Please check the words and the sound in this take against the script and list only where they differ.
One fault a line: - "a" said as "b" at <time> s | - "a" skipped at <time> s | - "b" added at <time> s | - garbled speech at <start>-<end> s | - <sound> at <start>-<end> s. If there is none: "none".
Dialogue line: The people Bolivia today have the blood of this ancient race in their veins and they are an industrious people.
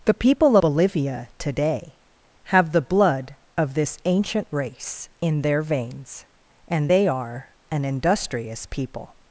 none